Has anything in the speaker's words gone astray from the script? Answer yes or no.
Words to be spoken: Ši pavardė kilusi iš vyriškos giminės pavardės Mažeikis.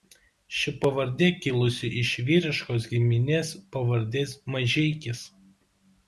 no